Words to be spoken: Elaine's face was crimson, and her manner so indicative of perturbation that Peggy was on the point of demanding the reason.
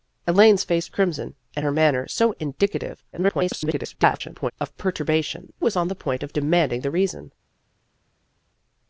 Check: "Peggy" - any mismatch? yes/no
yes